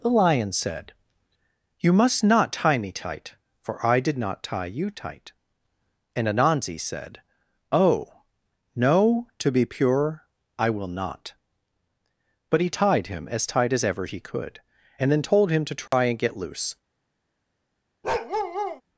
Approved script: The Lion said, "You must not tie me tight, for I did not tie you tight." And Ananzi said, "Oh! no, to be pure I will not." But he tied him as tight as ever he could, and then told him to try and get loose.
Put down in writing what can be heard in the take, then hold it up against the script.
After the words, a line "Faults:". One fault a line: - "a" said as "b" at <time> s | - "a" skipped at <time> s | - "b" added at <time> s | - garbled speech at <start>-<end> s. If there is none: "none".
The Lion said, "You must not tie me tight, for I did not tie you tight." And Ananzi said, "Oh! no, to be pure I will not." But he tied him as tight as ever he could, and then told him to try and get loose.
Faults:
none